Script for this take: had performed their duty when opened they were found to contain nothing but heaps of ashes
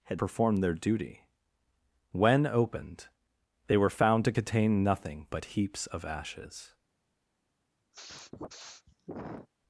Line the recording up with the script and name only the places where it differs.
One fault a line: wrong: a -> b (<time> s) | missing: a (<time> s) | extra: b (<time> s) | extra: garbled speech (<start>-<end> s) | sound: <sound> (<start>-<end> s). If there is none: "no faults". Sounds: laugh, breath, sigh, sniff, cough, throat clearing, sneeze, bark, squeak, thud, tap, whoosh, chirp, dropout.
sound: sniff (7.9-9.5 s)